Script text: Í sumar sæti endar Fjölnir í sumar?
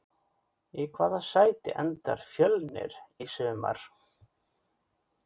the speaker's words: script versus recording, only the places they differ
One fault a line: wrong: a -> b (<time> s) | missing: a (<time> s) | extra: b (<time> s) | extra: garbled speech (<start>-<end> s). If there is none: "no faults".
wrong: sumar -> hvaða (0.9 s)